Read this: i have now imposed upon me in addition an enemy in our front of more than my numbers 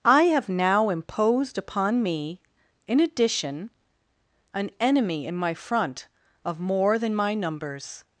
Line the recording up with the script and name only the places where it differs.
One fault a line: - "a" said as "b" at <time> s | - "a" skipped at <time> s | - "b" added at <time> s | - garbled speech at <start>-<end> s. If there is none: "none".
- "our" said as "my" at 5.3 s